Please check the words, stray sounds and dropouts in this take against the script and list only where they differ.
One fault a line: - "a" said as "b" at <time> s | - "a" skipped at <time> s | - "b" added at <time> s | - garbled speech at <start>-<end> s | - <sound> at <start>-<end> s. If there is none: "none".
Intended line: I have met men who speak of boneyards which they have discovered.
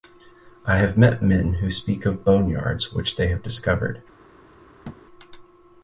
- thud at 4.8-5.0 s